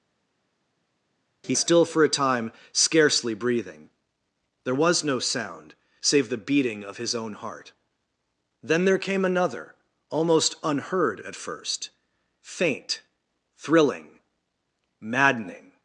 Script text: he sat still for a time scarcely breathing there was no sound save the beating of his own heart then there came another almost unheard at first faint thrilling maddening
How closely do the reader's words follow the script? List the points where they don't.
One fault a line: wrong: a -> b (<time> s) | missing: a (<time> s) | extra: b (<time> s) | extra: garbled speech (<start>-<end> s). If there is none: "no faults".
missing: sat (1.5 s)